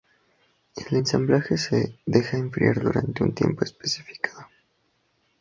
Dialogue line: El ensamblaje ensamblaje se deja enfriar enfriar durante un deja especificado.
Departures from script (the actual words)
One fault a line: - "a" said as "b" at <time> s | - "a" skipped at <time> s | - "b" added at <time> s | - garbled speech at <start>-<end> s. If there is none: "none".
- "ensamblaje" skipped at 1.6 s
- "enfriar" skipped at 2.8 s
- "deja" said as "tiempo" at 3.3 s